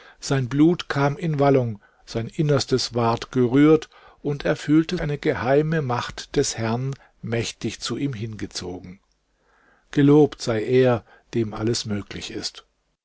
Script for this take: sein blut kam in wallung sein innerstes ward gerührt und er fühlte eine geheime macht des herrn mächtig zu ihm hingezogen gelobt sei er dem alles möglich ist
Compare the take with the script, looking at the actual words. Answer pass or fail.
pass